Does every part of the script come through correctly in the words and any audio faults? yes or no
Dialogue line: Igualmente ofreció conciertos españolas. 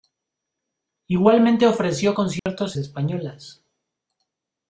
no